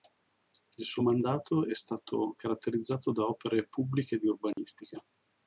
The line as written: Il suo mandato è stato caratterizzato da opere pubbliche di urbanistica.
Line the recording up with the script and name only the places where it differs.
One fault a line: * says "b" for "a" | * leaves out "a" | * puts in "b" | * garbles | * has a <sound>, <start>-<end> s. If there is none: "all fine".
* has a dropout, 4.5-4.6 s